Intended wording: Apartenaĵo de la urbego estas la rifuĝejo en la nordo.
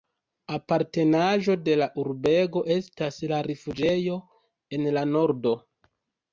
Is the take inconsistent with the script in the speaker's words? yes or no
no